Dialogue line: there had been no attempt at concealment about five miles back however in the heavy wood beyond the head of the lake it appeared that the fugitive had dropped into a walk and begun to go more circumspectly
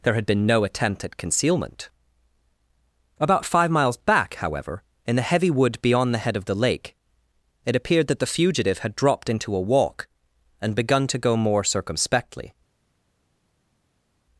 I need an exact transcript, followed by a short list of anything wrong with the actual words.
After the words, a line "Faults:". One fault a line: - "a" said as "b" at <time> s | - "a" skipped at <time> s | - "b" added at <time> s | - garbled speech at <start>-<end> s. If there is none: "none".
there had been no attempt at concealment about five miles back however in the heavy wood beyond the head of the lake it appeared that the fugitive had dropped into a walk and begun to go more circumspectly
Faults:
none